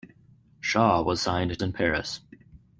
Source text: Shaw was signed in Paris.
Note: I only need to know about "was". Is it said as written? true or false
true